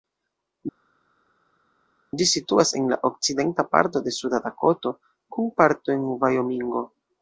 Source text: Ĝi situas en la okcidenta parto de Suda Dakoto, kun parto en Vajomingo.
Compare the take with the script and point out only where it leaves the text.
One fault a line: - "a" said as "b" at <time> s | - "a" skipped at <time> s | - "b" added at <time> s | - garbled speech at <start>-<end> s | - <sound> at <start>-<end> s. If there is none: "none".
none